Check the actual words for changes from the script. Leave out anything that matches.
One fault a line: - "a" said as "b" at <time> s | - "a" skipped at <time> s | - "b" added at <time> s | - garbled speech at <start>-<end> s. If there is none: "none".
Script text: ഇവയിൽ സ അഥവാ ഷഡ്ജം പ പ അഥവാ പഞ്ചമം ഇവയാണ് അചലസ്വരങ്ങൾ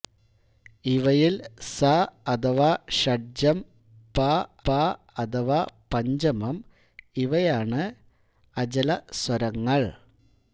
none